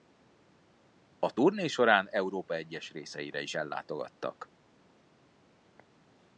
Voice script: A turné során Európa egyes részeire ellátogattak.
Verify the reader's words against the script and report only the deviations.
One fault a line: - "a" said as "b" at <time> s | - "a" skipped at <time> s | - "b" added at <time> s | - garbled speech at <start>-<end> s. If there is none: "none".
- "is" added at 3.4 s